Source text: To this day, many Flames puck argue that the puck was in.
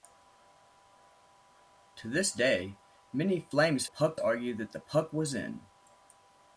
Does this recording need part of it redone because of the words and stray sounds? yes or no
no